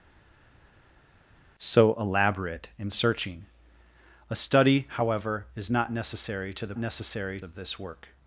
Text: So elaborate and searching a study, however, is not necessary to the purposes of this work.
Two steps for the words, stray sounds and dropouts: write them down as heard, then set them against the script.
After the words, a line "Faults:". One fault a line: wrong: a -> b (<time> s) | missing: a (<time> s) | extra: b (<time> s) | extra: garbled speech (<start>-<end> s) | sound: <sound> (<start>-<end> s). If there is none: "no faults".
So elaborate and searching a study, however, is not necessary to the necessary of this work.
Faults:
wrong: purposes -> necessary (6.8 s)